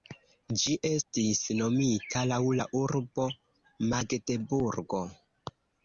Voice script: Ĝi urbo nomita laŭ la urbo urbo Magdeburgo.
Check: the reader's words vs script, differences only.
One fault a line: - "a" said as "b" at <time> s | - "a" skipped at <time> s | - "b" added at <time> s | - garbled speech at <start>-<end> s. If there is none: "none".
- "urbo" said as "estis" at 0.9 s
- "urbo" skipped at 3.3 s